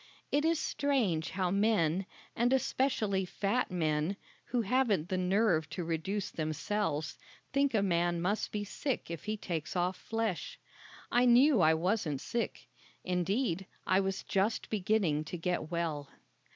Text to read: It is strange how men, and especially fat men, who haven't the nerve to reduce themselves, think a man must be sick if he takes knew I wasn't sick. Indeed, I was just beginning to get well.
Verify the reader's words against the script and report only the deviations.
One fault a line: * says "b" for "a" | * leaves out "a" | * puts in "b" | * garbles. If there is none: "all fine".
* puts in "off flesh I"